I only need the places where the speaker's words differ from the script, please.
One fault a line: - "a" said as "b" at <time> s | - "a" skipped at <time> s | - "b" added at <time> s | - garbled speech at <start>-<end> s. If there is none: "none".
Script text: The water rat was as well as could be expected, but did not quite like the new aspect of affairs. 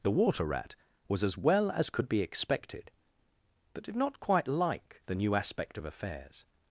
none